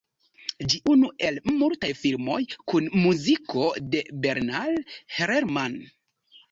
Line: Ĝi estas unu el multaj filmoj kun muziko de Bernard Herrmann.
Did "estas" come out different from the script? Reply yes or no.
yes